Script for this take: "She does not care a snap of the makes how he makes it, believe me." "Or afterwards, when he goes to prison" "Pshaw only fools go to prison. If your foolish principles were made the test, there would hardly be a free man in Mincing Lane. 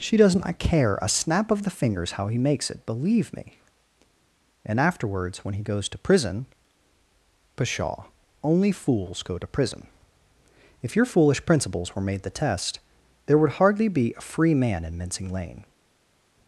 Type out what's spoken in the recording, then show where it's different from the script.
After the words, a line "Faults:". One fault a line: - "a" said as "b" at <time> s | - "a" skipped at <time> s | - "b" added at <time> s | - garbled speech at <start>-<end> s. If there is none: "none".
"She does not care a snap of the fingers how he makes it, believe me." "And afterwards, when he goes to prison" "Pshaw only fools go to prison. If your foolish principles were made the test, there would hardly be a free man in Mincing Lane.
Faults:
- "makes" said as "fingers" at 1.7 s
- "Or" said as "And" at 4.7 s